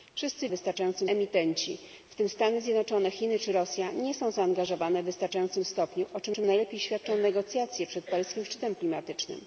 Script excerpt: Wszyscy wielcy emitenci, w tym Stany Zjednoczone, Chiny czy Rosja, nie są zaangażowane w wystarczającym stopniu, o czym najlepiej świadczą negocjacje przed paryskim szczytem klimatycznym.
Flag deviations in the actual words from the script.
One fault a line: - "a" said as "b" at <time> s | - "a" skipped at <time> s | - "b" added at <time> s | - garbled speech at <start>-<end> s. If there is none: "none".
- "wielcy" said as "wystarczającym" at 0.5 s
- "czym" added at 6.3 s